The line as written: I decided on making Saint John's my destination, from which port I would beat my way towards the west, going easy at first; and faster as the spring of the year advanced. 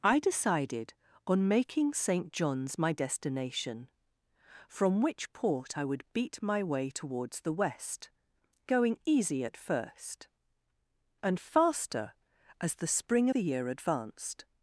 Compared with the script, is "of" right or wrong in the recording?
wrong